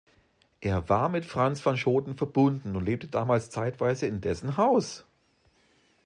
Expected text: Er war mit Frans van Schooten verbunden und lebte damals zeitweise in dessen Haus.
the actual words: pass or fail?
pass